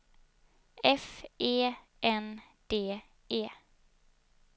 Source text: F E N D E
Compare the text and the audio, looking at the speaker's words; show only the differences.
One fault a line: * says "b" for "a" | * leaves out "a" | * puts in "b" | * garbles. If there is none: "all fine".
all fine